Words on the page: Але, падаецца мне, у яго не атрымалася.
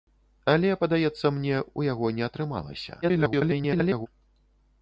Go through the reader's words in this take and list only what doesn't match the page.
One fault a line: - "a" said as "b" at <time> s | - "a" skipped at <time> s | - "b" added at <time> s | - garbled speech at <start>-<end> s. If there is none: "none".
- garbled speech at 3.0-4.1 s